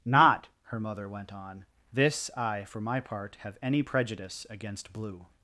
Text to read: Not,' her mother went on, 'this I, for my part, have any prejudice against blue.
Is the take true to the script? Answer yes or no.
yes